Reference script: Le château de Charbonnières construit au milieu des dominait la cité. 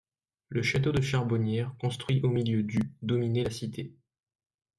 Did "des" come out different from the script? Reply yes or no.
yes